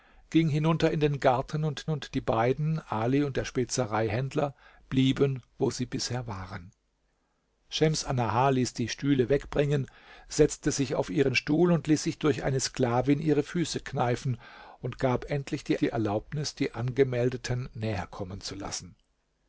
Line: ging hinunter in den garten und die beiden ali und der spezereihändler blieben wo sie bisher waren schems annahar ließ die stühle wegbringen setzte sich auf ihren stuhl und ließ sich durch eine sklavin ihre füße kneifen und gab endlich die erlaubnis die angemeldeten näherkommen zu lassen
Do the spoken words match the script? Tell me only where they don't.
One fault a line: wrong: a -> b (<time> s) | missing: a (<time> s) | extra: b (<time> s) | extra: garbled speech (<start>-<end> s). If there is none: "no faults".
extra: und (1.9 s)
extra: die (15.8 s)